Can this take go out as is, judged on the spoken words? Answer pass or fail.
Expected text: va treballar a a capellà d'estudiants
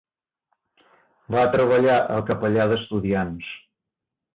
pass